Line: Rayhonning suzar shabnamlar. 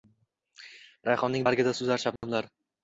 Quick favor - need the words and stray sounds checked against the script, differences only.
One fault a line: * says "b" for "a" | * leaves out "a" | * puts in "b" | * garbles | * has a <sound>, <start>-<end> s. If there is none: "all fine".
* puts in "bargida"
* has a dropout, 2.2-2.2 s